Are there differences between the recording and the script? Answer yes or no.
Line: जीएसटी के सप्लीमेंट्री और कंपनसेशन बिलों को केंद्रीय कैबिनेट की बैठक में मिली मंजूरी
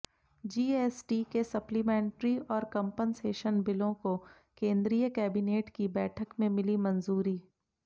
no